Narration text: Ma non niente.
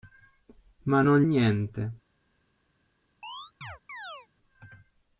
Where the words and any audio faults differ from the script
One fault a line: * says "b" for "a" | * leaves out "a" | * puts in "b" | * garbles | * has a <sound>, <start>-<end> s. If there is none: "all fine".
* has a chirp, 3.2-4.3 s